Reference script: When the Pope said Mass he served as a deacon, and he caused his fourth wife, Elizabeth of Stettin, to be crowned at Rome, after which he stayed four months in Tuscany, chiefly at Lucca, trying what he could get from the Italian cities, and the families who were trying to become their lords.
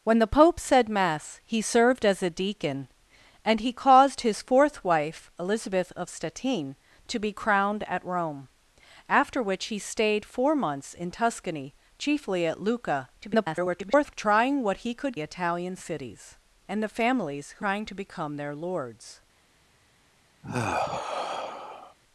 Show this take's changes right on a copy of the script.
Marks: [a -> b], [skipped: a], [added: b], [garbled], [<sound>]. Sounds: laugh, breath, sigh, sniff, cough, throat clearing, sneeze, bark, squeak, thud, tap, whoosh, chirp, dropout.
When the Pope said Mass he served as a deacon, and he caused his fourth wife, Elizabeth of Stettin, to be crowned at Rome, after which he stayed four months in Tuscany, chiefly at Lucca, [garbled] trying what he could [skipped: get from the] Italian cities, and the families who [skipped: were] trying to become their lords. [sigh]